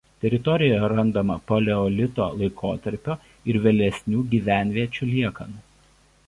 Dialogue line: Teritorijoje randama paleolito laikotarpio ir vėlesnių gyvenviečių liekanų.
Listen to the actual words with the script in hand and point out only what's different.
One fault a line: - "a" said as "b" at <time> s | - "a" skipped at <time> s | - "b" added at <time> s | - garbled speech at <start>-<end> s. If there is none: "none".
none